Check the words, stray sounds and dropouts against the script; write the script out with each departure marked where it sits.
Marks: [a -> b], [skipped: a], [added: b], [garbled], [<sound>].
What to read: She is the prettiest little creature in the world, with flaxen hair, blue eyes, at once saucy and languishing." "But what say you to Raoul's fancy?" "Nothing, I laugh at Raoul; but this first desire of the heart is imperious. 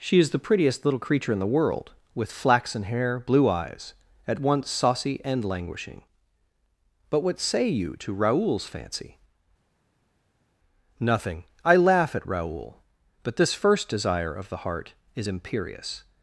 She is the prettiest little creature in the world, with flaxen hair, blue eyes, at once saucy and languishing." "But what say you to Raoul's fancy?" "Nothing, I laugh at Raoul; but this first desire of the heart is imperious.